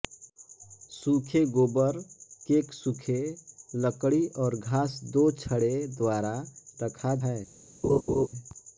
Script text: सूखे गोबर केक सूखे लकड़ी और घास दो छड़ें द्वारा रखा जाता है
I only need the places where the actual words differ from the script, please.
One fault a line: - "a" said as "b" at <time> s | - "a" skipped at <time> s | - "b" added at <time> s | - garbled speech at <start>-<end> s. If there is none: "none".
- "जाता" skipped at 7.2 s